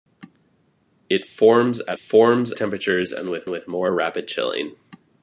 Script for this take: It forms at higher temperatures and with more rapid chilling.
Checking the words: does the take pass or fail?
fail